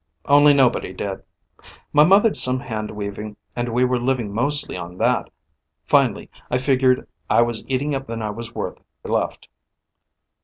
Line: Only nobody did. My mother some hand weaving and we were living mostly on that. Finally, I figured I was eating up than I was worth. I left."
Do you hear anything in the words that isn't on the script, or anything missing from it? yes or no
no